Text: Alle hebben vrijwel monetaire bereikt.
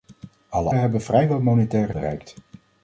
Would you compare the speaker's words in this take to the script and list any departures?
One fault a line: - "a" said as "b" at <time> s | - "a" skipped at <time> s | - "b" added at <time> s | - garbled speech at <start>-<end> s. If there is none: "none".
none